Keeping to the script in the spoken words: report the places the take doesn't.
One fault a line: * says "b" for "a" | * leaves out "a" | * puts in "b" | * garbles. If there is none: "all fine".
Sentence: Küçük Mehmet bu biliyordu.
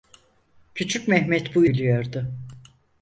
all fine